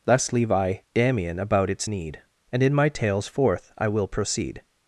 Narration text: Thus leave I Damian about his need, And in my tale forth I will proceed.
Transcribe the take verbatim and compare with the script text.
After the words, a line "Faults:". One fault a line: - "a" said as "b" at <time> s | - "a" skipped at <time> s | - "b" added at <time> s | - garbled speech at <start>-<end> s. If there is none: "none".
Thus leave I Damian about its need, And in my tales forth I will proceed.
Faults:
- "his" said as "its" at 1.7 s
- "tale" said as "tales" at 2.9 s